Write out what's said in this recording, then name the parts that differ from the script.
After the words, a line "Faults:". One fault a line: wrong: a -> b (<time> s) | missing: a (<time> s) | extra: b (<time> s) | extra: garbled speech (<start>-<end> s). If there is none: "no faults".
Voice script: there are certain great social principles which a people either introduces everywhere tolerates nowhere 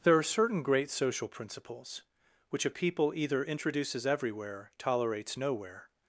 there are certain great social principles which a people either introduces everywhere tolerates nowhere
Faults:
no faults